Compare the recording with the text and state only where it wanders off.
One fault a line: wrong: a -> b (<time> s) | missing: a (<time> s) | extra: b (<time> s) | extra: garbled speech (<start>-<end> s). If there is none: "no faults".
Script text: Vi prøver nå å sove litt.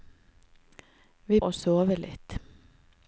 missing: prøver nå (1.4 s)